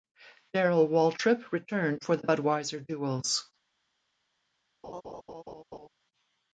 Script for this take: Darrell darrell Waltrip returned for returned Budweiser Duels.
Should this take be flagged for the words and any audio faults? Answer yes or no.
yes